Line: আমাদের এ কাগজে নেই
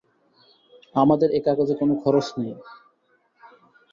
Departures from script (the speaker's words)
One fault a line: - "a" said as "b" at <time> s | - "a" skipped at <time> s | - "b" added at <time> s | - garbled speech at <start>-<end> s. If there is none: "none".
- "কোনো খরচ" added at 1.8 s